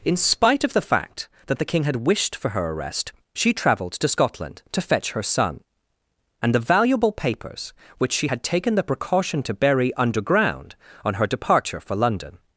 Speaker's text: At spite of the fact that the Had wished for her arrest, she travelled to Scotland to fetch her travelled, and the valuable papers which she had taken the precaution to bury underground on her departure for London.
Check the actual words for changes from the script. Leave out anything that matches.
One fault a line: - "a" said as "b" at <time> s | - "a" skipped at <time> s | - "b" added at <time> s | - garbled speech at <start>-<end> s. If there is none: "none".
- "At" said as "In" at 0.0 s
- "King" added at 1.7 s
- "travelled" said as "son" at 5.2 s